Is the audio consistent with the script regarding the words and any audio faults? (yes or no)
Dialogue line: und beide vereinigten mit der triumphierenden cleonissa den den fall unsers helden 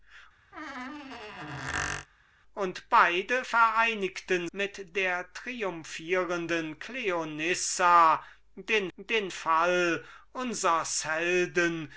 no